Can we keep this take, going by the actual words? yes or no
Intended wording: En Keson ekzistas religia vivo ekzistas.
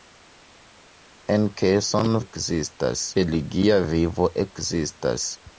yes